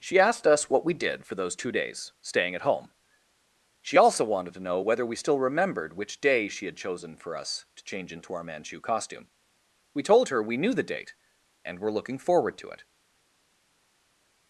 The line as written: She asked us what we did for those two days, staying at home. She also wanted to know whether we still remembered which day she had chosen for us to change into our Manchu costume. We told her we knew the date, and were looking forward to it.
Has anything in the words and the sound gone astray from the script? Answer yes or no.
no